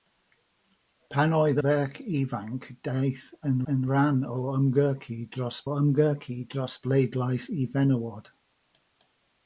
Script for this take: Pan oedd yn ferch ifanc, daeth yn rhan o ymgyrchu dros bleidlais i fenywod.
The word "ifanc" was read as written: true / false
true